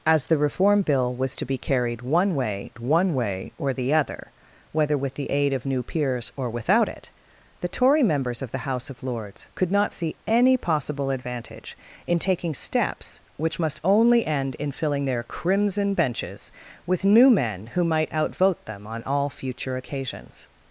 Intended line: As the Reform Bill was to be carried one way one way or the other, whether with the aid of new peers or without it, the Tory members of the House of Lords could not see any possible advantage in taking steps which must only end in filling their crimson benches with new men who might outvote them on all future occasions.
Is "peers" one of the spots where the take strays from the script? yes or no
no